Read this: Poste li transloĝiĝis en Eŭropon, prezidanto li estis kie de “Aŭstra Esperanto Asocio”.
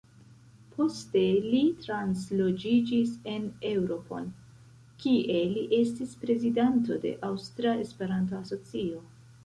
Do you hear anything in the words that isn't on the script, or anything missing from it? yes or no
yes